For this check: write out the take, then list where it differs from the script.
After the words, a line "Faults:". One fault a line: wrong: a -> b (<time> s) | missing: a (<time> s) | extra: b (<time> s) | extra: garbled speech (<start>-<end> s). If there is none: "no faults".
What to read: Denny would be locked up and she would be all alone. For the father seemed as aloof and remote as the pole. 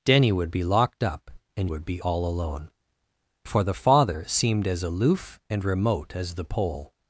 Denny would be locked up and would be all alone. For the father seemed as aloof and remote as the pole.
Faults:
missing: she (1.7 s)